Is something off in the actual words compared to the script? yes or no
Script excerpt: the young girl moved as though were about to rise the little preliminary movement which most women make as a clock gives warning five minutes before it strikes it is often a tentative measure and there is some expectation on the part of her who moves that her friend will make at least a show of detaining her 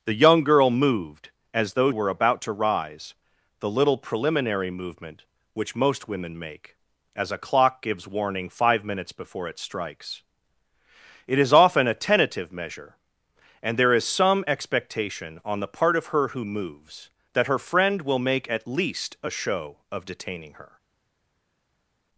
no